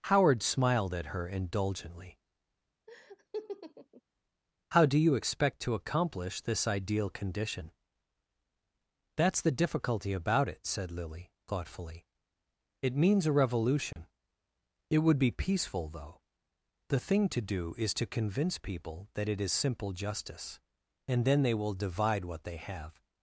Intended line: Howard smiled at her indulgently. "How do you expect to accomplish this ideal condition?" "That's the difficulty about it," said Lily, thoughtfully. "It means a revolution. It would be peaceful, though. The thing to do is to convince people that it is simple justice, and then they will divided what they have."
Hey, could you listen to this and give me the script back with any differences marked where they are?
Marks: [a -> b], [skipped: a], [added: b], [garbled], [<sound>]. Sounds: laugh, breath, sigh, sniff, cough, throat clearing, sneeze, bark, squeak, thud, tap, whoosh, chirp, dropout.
Howard smiled at her indulgently. [laugh] "How do you expect to accomplish this ideal condition?" "That's the difficulty about it," said Lily, thoughtfully. "It means a revolution. [dropout] It would be peaceful, though. The thing to do is to convince people that it is simple justice, and then they will [divided -> divide] what they have."